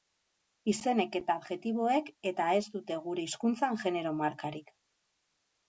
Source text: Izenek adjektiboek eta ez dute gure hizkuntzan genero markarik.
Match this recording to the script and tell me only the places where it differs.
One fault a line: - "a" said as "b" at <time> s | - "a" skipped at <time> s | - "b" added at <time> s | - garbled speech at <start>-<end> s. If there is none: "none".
- "eta" added at 1.2 s